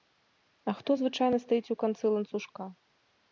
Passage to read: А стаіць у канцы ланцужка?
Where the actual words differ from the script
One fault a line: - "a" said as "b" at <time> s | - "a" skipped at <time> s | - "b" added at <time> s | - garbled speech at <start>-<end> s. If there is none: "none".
- "хто звычайна" added at 0.8 s